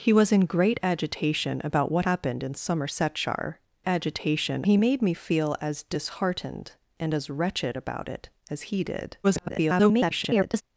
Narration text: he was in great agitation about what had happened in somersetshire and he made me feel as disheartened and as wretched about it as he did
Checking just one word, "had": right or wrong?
wrong